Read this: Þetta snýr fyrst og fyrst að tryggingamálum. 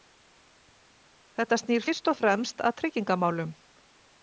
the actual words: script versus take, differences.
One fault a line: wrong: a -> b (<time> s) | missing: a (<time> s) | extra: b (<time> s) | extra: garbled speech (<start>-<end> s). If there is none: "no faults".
wrong: fyrst -> fremst (2.2 s)